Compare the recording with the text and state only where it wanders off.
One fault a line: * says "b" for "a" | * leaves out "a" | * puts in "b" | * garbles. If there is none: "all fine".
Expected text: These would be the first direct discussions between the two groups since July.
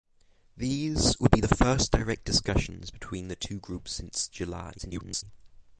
* garbles